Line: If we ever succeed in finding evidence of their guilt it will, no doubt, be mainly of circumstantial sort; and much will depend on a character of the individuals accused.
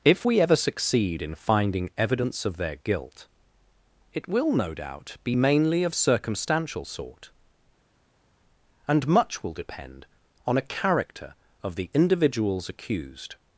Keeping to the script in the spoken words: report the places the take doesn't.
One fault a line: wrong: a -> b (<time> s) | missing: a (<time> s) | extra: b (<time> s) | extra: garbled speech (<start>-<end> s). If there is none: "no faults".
no faults